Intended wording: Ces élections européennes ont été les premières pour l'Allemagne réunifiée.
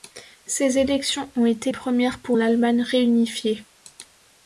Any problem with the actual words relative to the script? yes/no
yes